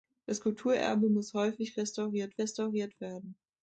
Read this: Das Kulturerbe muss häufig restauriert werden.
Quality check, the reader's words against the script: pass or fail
fail